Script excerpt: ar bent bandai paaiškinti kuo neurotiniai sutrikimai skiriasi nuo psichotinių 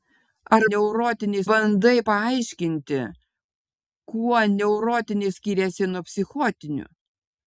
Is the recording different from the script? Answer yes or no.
yes